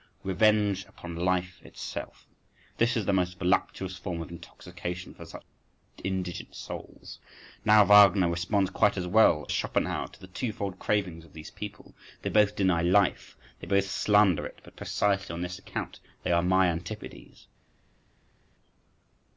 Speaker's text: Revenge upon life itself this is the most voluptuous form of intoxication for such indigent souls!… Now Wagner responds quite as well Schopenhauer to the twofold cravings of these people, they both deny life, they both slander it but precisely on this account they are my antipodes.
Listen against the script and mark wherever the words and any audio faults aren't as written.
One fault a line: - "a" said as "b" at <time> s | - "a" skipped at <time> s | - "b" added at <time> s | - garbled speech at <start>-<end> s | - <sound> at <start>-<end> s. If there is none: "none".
none